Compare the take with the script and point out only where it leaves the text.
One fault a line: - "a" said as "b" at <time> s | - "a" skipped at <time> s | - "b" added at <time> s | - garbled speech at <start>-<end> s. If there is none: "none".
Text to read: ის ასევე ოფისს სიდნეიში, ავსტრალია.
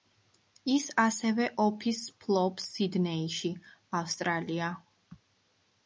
- "ფლობს" added at 2.2 s